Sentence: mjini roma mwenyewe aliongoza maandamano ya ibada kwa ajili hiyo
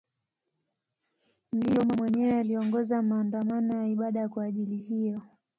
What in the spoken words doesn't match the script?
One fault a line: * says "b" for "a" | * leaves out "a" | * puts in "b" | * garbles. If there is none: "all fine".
all fine